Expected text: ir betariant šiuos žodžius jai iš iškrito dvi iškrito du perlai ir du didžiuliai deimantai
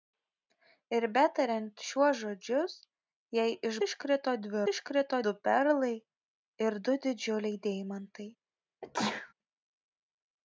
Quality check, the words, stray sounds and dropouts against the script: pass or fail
fail